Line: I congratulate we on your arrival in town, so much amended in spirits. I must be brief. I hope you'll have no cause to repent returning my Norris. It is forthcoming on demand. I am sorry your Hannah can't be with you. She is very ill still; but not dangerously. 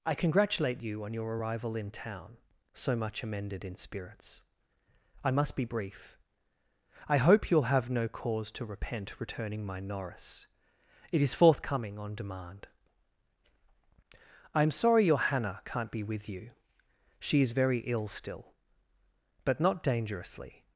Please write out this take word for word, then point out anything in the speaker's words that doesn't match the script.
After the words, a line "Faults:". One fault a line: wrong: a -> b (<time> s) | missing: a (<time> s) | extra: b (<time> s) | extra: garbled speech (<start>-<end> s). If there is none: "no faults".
I congratulate you on your arrival in town, so much amended in spirits. I must be brief. I hope you'll have no cause to repent returning my Norris. It is forthcoming on demand. I am sorry your Hannah can't be with you. She is very ill still; but not dangerously.
Faults:
wrong: we -> you (0.8 s)